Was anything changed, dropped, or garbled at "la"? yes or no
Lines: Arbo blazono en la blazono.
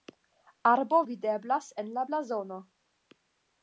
no